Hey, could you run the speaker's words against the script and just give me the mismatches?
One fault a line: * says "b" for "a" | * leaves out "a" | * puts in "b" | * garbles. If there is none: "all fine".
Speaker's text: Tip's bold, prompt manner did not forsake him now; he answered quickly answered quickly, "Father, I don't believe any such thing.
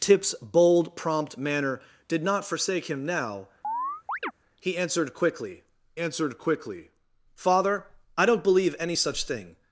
all fine